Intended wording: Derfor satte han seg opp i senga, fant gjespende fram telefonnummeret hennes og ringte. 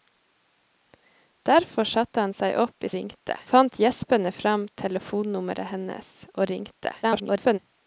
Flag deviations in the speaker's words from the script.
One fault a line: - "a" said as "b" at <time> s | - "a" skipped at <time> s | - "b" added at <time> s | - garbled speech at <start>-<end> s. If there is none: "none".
- "senga" said as "ringte" at 3.0 s
- garbled speech at 7.0-7.6 s